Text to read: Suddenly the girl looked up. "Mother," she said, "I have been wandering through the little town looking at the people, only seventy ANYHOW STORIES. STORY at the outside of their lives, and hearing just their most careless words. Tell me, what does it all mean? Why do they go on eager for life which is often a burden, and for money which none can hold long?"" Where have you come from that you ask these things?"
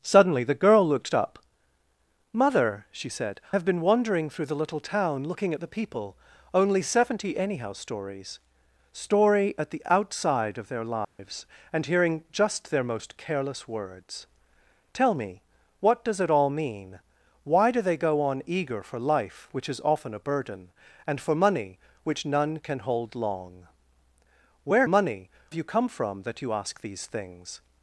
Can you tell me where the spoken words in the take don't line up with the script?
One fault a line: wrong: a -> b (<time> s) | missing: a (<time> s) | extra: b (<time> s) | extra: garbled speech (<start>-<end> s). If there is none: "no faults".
missing: I (3.4 s)
wrong: have -> money (24.8 s)